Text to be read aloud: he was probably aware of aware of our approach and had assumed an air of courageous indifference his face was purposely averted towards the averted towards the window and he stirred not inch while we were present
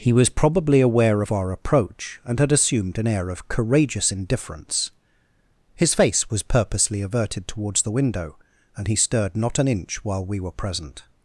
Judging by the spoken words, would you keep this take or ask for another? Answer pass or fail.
fail